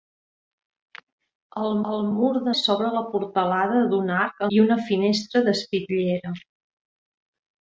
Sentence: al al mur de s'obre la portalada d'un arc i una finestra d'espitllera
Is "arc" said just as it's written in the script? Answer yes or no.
yes